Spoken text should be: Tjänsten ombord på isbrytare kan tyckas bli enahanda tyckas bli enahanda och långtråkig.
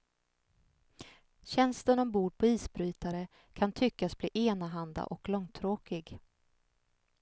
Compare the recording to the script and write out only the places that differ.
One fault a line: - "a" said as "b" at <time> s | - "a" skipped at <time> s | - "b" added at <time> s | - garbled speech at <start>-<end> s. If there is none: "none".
- "tyckas bli enahanda" skipped at 5.0 s